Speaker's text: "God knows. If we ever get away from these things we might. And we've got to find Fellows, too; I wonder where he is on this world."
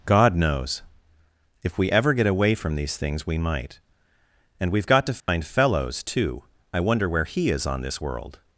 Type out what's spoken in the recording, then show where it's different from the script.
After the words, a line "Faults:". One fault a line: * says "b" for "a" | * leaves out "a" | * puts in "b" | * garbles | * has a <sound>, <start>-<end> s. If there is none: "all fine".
"God knows. If we ever get away from these things we might. And we've got to find Fellows, too; I wonder where he is on this world."
Faults:
* has a dropout, 5.2-5.3 s